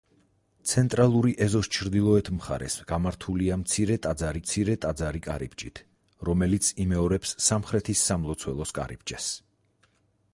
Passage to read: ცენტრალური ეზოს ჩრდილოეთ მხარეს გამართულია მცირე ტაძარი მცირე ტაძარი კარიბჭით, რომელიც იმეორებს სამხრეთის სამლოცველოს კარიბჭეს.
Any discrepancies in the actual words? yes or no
no